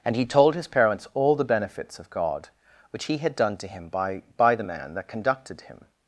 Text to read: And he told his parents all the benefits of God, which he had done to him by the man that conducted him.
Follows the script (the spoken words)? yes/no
no